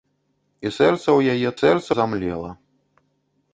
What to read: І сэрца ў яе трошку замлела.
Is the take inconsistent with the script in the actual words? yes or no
yes